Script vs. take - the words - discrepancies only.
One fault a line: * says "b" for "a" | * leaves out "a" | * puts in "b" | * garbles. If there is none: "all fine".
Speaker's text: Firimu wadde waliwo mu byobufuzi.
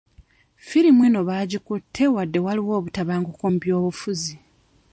* puts in "eno baagikutte"
* puts in "obutabanguko"